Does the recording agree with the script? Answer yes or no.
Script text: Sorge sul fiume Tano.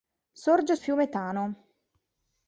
no